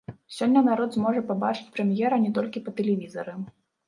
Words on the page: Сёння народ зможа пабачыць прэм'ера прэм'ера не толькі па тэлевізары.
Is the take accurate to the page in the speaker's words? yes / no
no